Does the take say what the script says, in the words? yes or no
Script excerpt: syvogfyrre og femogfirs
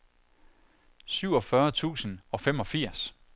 no